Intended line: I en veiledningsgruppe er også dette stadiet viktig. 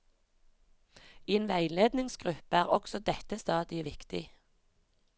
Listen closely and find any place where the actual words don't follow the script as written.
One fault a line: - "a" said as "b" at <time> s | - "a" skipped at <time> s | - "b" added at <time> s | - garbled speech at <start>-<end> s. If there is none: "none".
none